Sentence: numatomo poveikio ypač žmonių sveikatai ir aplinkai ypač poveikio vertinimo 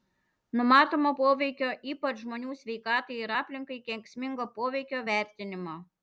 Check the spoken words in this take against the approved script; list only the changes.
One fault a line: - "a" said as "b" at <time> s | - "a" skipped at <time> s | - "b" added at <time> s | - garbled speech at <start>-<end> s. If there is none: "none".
- "ypač" said as "kenksmingo" at 3.9 s